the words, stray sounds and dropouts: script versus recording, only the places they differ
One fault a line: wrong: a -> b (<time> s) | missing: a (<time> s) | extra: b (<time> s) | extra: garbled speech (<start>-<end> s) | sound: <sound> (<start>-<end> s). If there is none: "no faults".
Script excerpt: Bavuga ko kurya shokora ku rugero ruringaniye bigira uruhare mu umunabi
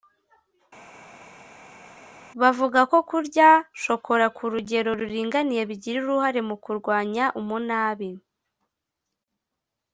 extra: kurwanya (6.6 s)